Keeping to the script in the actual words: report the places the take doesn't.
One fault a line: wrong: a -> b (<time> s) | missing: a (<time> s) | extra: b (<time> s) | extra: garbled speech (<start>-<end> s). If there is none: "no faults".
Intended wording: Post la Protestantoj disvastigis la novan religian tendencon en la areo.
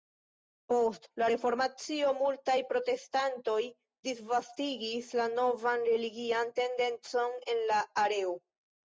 extra: Reformacio multaj (1.3 s)